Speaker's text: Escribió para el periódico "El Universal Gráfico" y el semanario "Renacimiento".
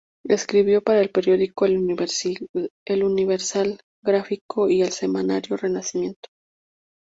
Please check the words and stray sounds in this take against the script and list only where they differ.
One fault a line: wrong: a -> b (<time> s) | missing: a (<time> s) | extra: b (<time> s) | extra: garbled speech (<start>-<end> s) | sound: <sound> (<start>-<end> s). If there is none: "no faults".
no faults